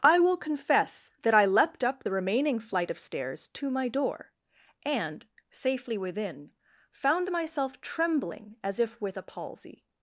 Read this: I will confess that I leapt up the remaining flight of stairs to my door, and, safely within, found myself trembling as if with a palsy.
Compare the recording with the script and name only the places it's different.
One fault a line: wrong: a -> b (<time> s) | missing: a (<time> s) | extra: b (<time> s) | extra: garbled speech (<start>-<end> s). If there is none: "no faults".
no faults